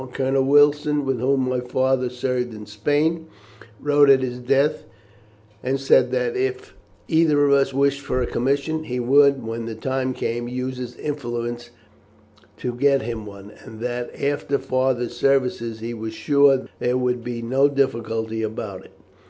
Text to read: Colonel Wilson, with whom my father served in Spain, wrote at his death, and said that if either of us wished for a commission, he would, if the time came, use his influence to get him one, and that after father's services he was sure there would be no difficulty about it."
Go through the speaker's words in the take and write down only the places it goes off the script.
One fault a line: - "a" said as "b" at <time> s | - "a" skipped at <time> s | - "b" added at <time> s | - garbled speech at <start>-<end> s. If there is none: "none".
- "if" said as "when" at 9.4 s